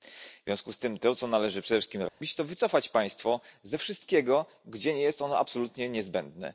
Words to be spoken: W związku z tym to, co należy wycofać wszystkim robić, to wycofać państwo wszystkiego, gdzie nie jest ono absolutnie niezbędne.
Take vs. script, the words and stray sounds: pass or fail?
fail